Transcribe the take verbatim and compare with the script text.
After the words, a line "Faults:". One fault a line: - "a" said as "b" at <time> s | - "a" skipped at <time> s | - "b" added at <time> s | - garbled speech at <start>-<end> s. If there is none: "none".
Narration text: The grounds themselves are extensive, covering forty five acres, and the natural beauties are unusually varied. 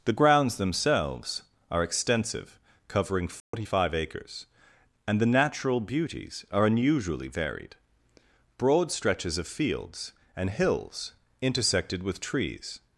The grounds themselves are extensive, covering forty five acres, and the natural beauties are unusually varied. Broad stretches of fields and hills intersected with trees
Faults:
- "Broad stretches of fields and hills intersected with trees" added at 8.6 s